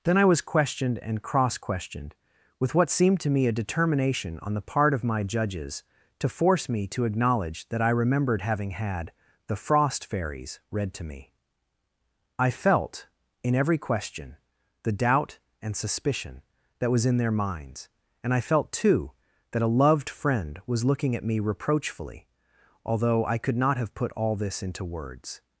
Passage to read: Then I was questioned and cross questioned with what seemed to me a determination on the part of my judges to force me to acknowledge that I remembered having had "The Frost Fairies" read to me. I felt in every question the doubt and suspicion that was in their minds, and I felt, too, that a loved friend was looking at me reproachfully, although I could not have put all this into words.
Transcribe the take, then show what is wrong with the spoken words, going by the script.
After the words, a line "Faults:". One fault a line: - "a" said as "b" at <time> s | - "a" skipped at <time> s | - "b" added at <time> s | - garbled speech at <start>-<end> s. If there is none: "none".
Then I was questioned and cross questioned with what seemed to me a determination on the part of my judges to force me to acknowledge that I remembered having had "The Frost Fairies" read to me. I felt in every question the doubt and suspicion that was in their minds, and I felt, too, that a loved friend was looking at me reproachfully, although I could not have put all this into words.
Faults:
none